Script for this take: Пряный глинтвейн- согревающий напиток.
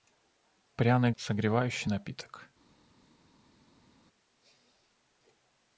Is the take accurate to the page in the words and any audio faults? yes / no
no